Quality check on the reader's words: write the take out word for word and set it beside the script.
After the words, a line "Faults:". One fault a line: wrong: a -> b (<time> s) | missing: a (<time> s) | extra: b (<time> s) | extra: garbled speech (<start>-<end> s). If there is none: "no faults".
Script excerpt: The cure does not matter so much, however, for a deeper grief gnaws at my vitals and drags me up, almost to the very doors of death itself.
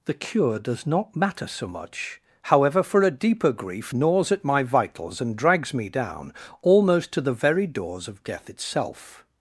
The cure does not matter so much, however, for a deeper grief gnaws at my vitals and drags me down, almost to the very doors of death itself.
Faults:
wrong: up -> down (5.9 s)